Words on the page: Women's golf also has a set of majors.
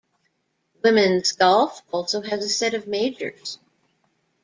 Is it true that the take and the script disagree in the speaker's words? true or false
false